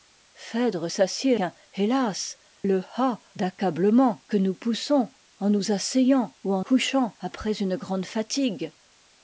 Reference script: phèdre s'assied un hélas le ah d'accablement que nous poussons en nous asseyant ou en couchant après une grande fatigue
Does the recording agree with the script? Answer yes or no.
yes